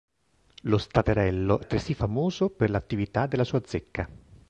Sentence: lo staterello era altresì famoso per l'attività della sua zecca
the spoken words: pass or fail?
fail